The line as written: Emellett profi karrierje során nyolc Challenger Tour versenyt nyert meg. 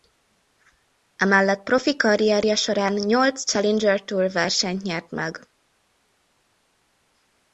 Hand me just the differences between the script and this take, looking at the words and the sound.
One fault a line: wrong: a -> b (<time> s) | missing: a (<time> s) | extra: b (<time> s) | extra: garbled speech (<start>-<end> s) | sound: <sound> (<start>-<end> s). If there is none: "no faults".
no faults